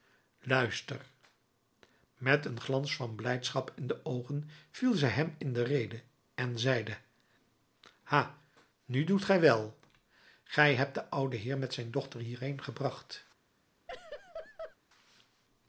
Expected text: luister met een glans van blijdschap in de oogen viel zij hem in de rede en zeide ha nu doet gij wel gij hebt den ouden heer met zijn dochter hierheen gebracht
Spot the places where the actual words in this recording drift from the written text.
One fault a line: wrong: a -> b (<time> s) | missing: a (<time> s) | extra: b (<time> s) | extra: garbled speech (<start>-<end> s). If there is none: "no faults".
no faults